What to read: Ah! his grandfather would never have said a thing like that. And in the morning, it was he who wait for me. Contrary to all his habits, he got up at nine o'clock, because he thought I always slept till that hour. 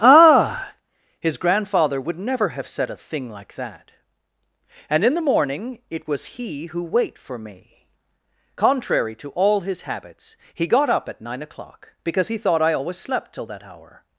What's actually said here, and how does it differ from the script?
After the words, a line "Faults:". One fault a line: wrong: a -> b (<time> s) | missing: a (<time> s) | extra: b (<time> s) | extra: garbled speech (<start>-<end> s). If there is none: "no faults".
Ah! his grandfather would never have said a thing like that. And in the morning, it was he who wait for me. Contrary to all his habits, he got up at nine o'clock, because he thought I always slept till that hour.
Faults:
no faults